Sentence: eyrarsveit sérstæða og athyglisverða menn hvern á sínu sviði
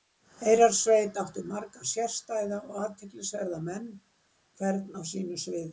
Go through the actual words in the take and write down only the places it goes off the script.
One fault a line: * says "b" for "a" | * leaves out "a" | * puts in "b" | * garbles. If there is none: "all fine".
* puts in "átti marga"